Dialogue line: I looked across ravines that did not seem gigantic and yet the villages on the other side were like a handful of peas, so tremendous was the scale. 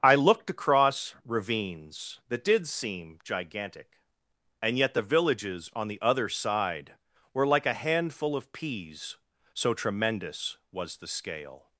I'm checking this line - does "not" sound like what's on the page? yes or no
no